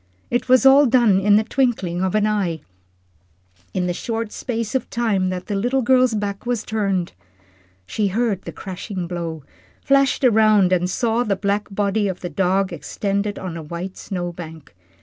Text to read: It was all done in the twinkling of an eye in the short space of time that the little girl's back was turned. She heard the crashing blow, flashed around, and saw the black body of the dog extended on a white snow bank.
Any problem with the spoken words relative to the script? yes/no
no